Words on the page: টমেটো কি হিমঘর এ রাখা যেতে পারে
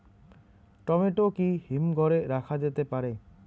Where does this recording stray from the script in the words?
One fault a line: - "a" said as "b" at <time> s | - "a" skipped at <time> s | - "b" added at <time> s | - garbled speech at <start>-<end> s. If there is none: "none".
none